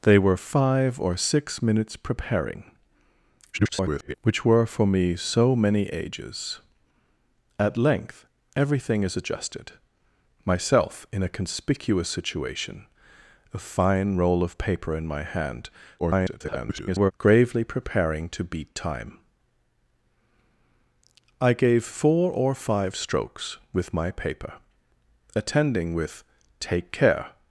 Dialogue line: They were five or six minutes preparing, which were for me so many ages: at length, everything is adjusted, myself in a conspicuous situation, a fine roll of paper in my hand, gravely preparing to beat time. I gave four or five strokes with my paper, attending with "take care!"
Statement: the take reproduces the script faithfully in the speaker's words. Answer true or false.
false